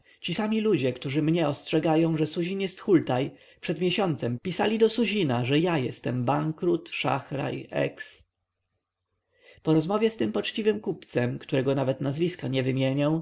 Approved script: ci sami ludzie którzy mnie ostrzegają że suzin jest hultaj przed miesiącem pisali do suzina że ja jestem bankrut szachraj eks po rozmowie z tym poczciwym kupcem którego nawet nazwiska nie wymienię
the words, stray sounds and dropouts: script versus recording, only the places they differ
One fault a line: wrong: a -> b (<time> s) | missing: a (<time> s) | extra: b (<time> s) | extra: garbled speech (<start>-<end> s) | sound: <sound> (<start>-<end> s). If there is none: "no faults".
no faults